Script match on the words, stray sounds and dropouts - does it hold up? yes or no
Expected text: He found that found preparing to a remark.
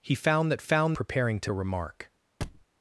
no